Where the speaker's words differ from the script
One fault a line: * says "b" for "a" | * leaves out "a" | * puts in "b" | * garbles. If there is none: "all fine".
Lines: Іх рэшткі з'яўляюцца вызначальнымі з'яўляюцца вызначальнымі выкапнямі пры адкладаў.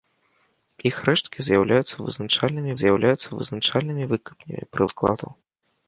all fine